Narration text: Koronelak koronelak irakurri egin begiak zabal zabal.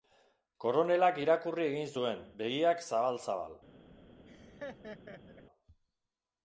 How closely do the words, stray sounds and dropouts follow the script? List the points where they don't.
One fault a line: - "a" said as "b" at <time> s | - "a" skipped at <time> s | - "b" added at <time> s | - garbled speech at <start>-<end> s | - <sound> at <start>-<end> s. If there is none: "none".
- "koronelak" skipped at 1.2 s
- "zuen" added at 2.0 s
- laugh at 4.3-5.4 s